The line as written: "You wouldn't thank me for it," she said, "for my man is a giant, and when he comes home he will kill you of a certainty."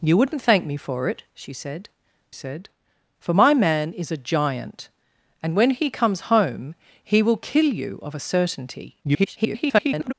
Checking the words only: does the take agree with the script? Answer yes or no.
no